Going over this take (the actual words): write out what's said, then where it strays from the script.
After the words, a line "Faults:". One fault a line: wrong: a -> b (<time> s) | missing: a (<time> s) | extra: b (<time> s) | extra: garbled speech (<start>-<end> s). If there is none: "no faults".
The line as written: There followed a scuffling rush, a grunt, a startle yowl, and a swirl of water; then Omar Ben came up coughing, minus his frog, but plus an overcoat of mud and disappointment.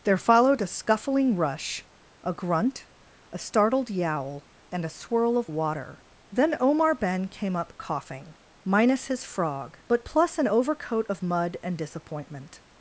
There followed a scuffling rush, a grunt, a startled yowl, and a swirl of water; then Omar Ben came up coughing, minus his frog, but plus an overcoat of mud and disappointment.
Faults:
wrong: startle -> startled (3.4 s)